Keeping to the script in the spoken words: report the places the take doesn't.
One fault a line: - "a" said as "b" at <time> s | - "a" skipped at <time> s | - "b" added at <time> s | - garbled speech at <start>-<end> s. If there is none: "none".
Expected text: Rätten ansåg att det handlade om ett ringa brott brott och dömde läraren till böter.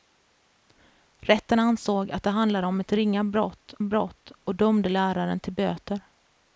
none